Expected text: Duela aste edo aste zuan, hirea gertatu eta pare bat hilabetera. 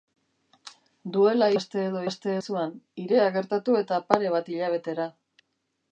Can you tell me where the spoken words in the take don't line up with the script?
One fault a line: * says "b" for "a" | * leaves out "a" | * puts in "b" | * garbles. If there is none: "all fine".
all fine